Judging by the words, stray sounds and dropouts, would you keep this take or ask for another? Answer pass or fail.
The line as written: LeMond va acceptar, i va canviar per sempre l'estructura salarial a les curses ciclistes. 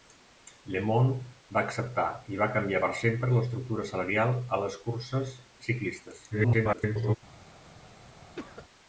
fail